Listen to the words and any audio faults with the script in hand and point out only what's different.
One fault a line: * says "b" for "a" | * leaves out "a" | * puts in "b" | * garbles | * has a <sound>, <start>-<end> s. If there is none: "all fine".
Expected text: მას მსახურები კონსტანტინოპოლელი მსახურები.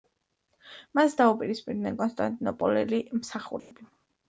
* says "დაუპირისპირდნენ" for "მსახურები"
* has a dropout, 3.6-3.7 s